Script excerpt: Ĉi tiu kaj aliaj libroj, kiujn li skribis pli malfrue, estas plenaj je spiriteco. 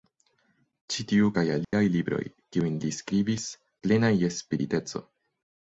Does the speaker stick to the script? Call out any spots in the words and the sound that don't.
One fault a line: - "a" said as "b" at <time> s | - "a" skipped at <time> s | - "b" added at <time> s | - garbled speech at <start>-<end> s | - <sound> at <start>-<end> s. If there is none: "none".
- dropout at 1.6-1.7 s
- "pli malfrue estas" skipped at 3.5 s